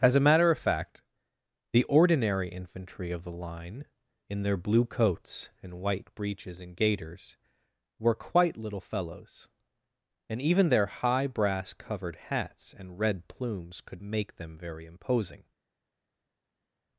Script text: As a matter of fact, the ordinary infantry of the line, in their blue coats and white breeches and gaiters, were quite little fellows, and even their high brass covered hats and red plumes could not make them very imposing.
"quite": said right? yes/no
yes